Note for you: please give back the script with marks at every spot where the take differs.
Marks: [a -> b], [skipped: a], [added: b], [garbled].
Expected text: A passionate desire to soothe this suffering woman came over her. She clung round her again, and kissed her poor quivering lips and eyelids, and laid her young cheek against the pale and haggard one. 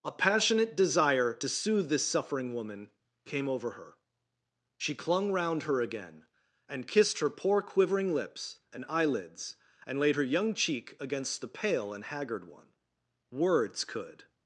A passionate desire to soothe this suffering woman came over her. She clung round her again, and kissed her poor quivering lips and eyelids, and laid her young cheek against the pale and haggard one. [added: Words could]